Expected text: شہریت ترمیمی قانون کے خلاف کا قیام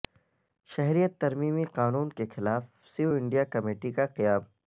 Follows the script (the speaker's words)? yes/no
no